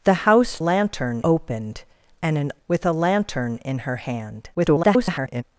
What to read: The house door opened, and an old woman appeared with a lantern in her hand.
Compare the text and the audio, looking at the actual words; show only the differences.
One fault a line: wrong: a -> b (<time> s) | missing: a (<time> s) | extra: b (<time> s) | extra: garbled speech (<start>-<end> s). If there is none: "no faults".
wrong: door -> lantern (0.6 s)
missing: old woman appeared (2.5 s)
extra: garbled speech (4.5-5.4 s)